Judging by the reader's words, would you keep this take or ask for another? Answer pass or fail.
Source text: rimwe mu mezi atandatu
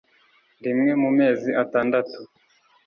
pass